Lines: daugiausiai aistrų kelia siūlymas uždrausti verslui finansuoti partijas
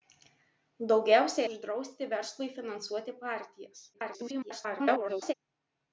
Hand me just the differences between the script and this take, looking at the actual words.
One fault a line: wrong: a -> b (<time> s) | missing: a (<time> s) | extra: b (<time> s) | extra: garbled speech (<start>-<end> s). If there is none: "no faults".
missing: aistrų kelia siūlymas (1.4 s)
extra: garbled speech (3.9-5.3 s)